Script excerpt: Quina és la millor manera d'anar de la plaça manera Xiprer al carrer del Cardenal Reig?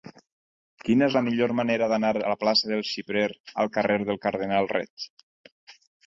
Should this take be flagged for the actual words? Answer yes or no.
yes